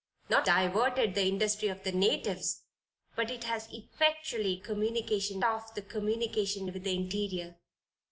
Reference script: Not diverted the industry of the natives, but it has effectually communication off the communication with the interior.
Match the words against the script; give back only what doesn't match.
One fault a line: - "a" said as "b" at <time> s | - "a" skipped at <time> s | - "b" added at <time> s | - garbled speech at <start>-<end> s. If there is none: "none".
none